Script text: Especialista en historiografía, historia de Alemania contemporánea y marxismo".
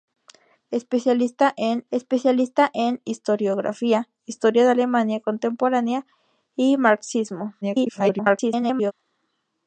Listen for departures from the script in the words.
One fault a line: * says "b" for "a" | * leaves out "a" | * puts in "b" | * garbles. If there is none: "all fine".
* puts in "especialista en"
* garbles